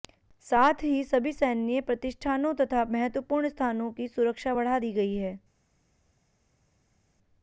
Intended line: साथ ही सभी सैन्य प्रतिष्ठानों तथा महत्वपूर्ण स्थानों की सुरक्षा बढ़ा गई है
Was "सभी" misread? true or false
false